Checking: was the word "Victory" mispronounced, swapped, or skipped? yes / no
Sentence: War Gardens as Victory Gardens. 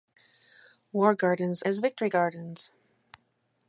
no